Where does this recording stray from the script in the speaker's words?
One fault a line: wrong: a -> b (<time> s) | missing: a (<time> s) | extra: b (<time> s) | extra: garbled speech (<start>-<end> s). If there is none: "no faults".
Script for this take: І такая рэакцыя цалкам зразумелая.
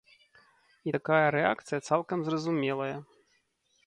no faults